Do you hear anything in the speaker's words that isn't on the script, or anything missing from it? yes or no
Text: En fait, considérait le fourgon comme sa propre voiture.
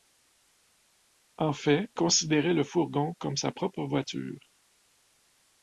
no